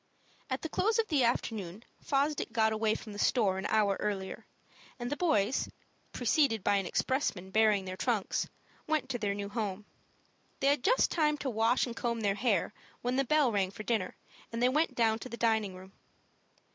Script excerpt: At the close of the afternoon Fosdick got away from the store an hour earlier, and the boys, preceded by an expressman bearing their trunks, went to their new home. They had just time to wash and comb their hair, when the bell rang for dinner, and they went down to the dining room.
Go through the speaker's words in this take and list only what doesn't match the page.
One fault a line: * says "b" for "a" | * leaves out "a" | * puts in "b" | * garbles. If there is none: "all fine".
all fine